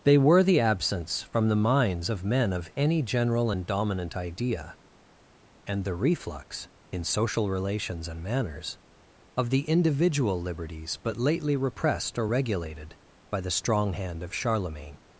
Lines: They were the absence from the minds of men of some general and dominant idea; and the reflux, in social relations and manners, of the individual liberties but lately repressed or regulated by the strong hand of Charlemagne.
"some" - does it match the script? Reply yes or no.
no